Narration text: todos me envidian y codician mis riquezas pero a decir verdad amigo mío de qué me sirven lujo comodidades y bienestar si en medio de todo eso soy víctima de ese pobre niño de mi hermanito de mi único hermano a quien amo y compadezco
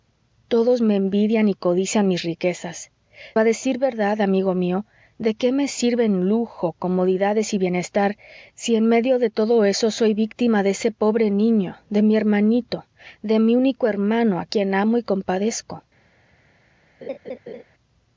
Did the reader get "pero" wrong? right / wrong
wrong